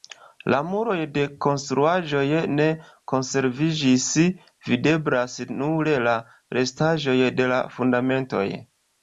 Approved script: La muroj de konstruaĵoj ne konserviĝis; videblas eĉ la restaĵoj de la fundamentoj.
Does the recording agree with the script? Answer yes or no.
no